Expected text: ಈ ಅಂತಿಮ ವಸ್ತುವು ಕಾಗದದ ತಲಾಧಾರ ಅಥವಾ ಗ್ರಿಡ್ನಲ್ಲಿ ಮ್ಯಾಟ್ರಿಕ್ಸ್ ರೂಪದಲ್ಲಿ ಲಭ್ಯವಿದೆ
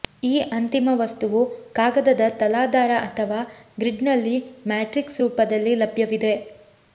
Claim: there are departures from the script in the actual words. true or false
false